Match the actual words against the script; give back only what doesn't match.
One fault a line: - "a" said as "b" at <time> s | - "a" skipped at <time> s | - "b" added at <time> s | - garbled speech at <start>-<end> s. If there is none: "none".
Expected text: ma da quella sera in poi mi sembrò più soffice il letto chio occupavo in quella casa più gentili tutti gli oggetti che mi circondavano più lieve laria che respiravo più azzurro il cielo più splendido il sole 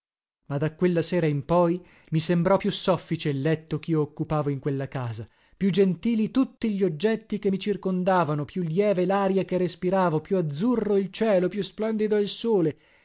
none